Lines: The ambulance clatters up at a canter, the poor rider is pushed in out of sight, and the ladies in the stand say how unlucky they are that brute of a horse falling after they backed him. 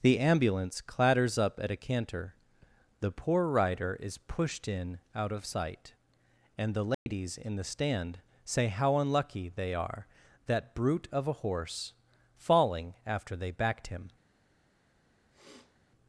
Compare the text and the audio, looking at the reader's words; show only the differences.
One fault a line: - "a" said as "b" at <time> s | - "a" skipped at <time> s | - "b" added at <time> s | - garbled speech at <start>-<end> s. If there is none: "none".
none